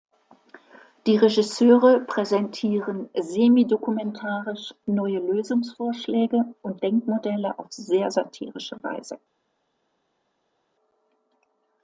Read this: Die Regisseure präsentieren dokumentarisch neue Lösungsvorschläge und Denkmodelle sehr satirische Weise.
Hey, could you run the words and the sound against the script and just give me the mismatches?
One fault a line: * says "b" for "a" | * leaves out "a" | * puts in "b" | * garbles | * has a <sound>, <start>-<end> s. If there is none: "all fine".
* puts in "semi"
* puts in "auf"